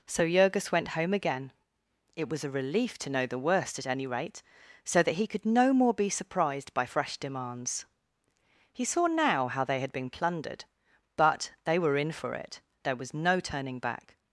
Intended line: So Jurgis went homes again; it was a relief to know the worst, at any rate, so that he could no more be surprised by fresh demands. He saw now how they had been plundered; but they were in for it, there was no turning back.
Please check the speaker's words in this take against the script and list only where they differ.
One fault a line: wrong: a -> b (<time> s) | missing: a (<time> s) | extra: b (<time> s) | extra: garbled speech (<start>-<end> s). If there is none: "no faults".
wrong: homes -> home (1.0 s)